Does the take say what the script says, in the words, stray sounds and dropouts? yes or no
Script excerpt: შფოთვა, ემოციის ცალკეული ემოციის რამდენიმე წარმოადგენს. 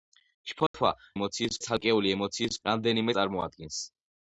no